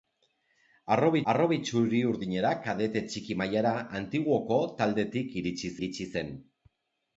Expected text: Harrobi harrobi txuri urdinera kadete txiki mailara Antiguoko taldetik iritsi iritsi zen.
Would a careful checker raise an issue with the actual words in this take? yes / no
no